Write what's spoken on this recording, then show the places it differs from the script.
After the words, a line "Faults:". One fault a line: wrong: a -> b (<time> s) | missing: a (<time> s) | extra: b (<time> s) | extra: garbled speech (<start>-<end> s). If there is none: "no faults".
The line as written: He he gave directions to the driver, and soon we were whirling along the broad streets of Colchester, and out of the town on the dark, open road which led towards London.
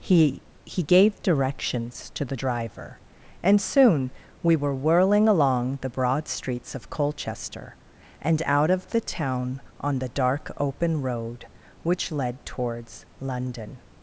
He he gave directions to the driver, and soon we were whirling along the broad streets of Colchester, and out of the town on the dark, open road which led towards London.
Faults:
no faults